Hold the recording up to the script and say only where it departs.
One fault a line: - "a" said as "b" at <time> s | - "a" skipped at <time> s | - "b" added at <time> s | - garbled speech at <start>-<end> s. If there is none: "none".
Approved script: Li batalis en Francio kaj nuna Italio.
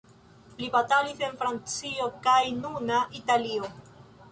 none